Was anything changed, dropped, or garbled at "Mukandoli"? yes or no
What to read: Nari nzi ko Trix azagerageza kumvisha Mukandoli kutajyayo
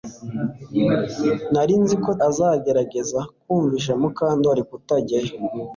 no